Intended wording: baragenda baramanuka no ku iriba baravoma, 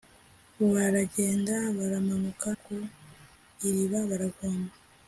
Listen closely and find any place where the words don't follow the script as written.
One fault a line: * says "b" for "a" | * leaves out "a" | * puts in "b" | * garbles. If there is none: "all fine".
* leaves out "no"